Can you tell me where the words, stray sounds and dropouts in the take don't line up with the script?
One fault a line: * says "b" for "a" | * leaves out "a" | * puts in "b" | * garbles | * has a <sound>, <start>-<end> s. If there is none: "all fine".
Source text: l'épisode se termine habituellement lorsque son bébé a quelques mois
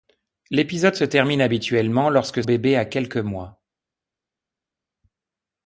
* leaves out "son"